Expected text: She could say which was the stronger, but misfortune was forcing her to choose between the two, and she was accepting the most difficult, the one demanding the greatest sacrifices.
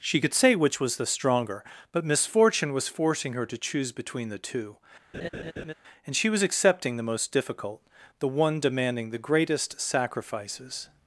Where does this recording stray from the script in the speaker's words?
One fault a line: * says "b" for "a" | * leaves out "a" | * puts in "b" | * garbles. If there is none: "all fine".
all fine